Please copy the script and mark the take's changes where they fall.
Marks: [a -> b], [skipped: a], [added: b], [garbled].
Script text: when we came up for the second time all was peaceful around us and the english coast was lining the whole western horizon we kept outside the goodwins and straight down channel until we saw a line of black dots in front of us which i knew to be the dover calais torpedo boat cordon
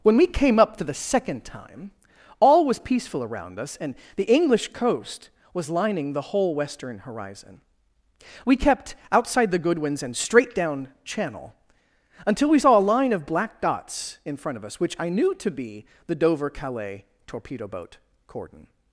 when we came up for the second time all was peaceful around us and the english coast was lining the whole western horizon we kept outside the goodwins and straight down channel until we saw a line of black dots in front of us which i knew to be the dover calais torpedo boat cordon